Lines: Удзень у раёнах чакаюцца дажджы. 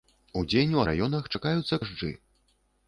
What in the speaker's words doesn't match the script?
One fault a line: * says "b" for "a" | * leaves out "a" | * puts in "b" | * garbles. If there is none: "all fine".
all fine